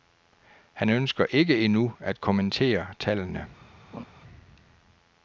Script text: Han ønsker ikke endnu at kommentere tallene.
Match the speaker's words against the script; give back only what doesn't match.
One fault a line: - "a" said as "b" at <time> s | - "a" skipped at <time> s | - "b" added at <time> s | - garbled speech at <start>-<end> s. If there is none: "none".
none